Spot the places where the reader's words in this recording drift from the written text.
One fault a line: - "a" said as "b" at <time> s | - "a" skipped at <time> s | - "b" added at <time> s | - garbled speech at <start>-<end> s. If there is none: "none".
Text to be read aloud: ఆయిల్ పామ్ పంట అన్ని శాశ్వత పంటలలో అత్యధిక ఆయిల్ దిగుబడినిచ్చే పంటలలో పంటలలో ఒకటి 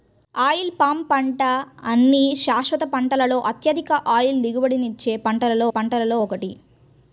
none